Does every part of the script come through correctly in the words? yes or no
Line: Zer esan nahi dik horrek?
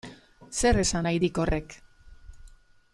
yes